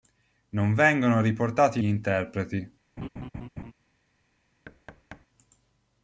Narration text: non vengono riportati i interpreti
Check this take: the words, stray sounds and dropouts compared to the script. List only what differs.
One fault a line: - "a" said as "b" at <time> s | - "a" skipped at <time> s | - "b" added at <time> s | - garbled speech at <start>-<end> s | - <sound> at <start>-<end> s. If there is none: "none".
- laugh at 3.0-3.7 s
- thud at 4.7-5.3 s